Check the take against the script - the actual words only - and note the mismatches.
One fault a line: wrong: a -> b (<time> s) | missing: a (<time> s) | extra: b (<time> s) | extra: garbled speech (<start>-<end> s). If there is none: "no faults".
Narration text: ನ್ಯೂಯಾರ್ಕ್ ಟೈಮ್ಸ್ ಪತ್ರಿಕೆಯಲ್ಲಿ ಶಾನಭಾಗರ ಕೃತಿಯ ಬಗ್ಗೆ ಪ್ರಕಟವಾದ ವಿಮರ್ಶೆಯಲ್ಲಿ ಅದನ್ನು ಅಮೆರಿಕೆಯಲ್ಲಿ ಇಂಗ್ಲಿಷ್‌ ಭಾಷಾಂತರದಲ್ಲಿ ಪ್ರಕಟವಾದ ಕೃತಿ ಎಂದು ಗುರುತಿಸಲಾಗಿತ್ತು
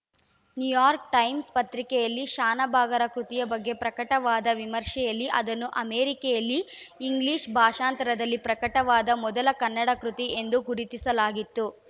extra: ಮೊದಲ ಕನ್ನಡ (9.2 s)